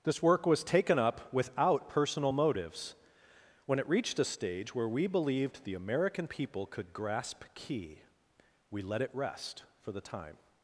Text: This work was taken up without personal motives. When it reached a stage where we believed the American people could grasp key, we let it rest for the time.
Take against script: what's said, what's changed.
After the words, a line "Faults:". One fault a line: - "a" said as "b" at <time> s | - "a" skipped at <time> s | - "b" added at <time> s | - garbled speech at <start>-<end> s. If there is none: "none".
This work was taken up without personal motives. When it reached a stage where we believed the American people could grasp key, we let it rest for the time.
Faults:
none